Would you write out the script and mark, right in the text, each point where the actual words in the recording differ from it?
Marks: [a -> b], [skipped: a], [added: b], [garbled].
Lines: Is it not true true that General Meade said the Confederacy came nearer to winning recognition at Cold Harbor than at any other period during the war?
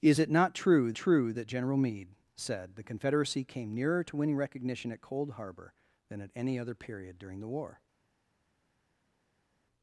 Is it not true true that General Meade said the Confederacy came nearer to winning recognition at Cold Harbor than at any other period during the war?